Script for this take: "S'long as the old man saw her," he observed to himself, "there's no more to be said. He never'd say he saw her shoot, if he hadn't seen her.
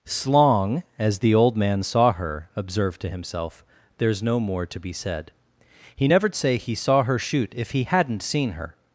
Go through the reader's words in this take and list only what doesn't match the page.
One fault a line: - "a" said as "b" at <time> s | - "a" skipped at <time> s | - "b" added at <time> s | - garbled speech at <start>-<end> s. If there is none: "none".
- "he" skipped at 2.5 s